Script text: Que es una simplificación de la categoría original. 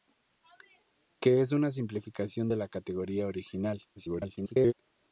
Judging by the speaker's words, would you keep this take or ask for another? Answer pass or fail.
fail